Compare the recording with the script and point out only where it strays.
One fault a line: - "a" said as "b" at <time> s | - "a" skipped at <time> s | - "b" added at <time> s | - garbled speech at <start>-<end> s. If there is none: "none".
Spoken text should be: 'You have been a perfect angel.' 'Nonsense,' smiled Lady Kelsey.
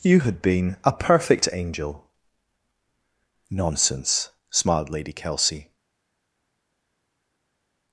- "have" said as "had" at 0.2 s